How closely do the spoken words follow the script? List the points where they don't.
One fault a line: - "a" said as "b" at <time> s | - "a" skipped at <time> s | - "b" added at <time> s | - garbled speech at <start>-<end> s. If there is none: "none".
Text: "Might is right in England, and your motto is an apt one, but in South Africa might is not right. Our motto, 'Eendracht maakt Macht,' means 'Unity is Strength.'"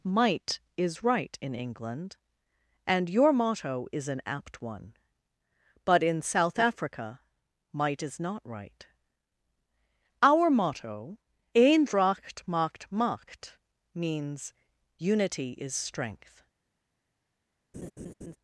none